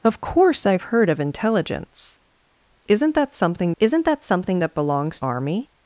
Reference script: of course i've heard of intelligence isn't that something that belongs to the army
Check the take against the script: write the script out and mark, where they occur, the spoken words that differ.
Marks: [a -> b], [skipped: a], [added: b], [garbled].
of course i've heard of intelligence isn't that something [added: isn't] that [belongs to the -> something that belongs] army